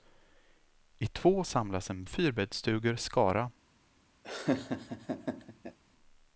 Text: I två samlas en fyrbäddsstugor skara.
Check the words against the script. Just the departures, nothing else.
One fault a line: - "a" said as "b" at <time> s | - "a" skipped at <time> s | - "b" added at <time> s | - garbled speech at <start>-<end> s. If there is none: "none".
none